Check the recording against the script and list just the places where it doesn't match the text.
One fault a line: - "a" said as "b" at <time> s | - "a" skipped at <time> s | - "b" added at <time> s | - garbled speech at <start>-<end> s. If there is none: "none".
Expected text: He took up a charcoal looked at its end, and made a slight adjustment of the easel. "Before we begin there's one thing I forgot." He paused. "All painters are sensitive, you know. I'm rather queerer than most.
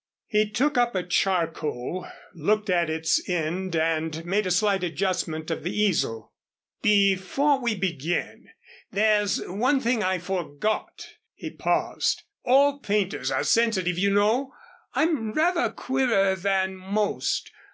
none